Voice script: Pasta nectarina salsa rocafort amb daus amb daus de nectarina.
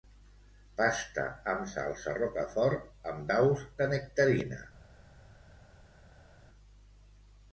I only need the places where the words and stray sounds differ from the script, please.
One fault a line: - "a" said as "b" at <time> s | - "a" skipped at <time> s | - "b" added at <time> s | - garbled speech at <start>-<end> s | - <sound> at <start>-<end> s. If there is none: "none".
- "nectarina" said as "amb" at 1.5 s
- "amb daus" skipped at 3.7 s